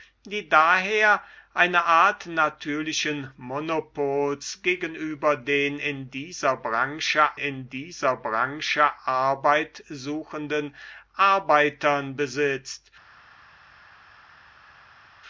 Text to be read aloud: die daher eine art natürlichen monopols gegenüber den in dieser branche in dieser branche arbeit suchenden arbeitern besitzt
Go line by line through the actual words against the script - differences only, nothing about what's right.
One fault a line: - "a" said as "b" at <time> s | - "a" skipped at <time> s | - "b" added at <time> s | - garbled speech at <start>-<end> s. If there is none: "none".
none